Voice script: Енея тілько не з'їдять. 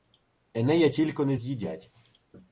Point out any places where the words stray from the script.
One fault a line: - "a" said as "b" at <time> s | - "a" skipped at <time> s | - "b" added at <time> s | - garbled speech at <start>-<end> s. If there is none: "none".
none